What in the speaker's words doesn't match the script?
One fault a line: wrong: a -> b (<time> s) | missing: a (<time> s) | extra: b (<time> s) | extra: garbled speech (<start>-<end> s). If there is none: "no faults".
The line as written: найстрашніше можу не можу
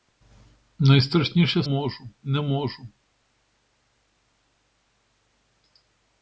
no faults